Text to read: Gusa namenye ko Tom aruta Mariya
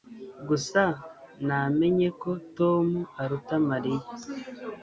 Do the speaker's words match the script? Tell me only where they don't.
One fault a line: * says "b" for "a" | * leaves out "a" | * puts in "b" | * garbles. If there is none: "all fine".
all fine